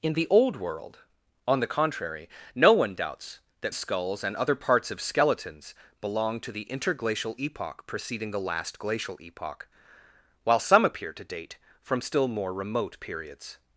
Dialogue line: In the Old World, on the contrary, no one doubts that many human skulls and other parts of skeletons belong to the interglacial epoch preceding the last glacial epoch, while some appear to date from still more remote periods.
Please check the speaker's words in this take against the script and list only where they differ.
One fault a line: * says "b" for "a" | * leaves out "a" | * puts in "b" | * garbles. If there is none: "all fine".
* leaves out "many human"